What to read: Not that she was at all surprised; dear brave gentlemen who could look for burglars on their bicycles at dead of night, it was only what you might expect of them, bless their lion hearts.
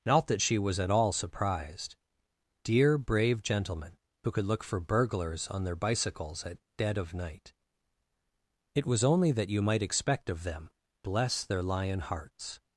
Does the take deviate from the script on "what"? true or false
true